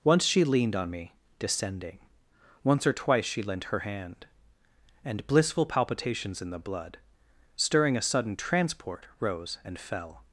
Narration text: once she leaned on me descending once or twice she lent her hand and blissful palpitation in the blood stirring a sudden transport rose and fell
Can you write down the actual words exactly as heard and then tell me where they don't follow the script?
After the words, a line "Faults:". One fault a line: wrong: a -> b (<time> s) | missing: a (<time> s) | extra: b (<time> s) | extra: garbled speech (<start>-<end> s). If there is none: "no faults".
once she leaned on me descending once or twice she lent her hand and blissful palpitations in the blood stirring a sudden transport rose and fell
Faults:
wrong: palpitation -> palpitations (5.7 s)